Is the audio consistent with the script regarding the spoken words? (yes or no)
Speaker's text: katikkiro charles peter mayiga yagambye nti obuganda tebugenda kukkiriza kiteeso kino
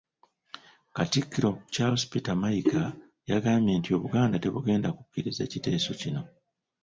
yes